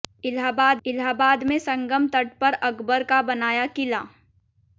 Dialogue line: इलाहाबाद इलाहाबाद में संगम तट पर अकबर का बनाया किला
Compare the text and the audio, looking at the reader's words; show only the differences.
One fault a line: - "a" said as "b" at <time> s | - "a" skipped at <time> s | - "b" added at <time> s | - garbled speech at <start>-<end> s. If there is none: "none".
none